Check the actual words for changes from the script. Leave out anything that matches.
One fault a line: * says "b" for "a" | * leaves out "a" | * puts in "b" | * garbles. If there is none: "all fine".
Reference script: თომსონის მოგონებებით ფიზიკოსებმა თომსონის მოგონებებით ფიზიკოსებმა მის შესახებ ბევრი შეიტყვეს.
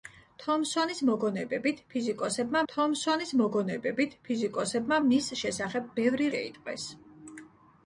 all fine